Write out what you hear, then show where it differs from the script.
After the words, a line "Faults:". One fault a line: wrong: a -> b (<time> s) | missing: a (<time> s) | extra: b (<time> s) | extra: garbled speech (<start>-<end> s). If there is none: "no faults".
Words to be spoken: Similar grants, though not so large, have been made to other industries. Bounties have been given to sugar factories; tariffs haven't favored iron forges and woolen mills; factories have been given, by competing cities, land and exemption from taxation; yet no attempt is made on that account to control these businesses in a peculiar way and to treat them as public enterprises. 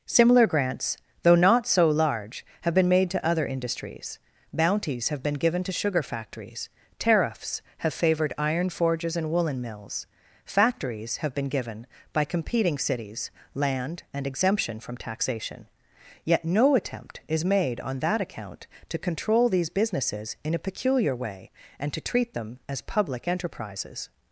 Similar grants, though not so large, have been made to other industries. Bounties have been given to sugar factories; tariffs have favored iron forges and woolen mills; factories have been given, by competing cities, land and exemption from taxation; yet no attempt is made on that account to control these businesses in a peculiar way and to treat them as public enterprises.
Faults:
wrong: haven't -> have (7.8 s)